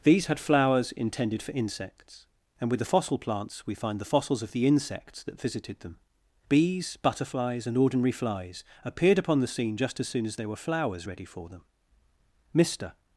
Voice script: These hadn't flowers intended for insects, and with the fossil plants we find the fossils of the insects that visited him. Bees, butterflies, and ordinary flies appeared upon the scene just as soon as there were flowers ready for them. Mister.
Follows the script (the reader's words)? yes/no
no